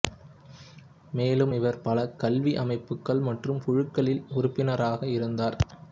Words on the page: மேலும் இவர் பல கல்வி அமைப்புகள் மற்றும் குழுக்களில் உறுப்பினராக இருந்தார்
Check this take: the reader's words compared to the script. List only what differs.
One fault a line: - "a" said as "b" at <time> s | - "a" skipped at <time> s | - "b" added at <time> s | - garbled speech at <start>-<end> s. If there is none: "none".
none